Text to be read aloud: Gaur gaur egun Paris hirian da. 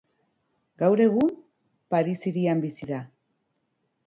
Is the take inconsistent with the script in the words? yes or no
yes